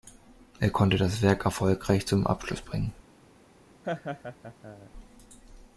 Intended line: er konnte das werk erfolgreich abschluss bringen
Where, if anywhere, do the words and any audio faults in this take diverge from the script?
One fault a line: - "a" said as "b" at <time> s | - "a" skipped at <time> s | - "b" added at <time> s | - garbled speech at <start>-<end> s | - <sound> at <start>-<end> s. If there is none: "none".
- "zum" added at 2.1 s
- laugh at 3.8-4.9 s